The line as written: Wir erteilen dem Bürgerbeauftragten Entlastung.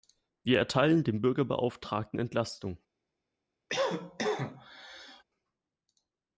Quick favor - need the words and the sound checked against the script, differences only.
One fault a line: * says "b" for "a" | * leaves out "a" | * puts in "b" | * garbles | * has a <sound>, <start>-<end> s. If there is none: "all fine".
* has a cough, 3.7-5.2 s